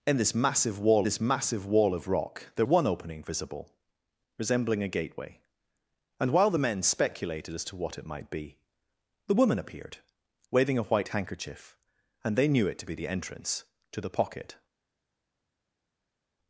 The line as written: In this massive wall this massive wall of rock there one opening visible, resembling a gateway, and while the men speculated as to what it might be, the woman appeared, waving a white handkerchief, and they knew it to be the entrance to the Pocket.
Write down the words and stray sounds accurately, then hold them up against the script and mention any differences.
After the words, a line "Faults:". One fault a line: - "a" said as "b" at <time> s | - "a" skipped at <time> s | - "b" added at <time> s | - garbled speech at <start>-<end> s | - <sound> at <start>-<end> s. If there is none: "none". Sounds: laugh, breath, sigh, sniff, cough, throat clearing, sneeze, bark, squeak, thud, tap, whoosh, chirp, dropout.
In this massive wall this massive wall of rock there one opening visible, resembling a gateway, and while the men speculated as to what it might be, the woman appeared, waving a white handkerchief, and they knew it to be the entrance to the Pocket.
Faults:
none